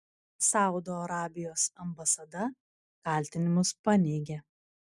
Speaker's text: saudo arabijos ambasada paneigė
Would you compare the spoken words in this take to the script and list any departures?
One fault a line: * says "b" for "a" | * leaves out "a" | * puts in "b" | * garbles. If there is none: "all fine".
* puts in "kaltinimus"